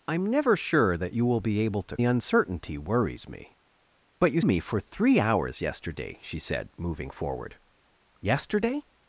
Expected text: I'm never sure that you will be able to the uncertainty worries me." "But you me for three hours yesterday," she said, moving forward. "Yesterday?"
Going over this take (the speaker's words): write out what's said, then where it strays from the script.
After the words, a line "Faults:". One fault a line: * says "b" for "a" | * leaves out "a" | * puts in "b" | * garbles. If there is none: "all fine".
I'm never sure that you will be able to the uncertainty worries me." "But you me for three hours yesterday," she said, moving forward. "Yesterday?"
Faults:
all fine